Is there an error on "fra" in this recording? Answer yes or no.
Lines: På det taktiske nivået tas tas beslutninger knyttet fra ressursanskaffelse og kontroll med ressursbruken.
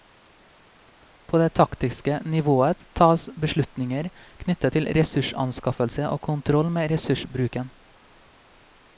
yes